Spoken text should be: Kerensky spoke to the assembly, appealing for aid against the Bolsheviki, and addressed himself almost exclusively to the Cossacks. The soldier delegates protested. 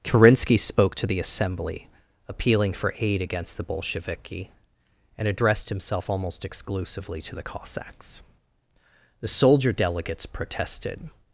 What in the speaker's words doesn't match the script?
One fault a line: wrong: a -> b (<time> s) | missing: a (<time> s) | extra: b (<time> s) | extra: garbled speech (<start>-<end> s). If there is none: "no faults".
no faults